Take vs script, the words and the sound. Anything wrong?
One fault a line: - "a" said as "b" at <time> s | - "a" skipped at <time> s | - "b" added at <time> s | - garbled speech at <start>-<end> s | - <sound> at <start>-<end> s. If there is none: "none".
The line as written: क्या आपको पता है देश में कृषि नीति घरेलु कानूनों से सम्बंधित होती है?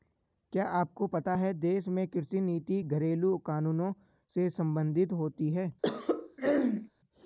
- throat clearing at 5.8-6.9 s